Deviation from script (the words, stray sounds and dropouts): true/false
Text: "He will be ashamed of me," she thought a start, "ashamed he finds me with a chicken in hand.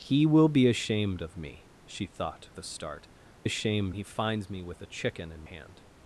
false